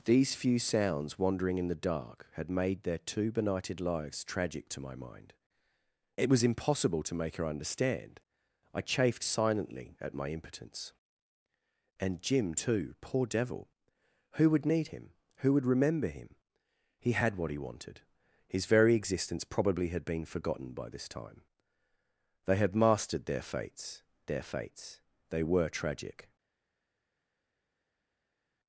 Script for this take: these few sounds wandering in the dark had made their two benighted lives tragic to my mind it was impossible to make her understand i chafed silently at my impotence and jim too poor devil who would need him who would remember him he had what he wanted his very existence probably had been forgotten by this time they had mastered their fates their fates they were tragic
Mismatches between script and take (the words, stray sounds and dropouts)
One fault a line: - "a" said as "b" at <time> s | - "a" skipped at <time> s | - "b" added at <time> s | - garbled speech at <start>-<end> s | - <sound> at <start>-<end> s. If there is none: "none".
none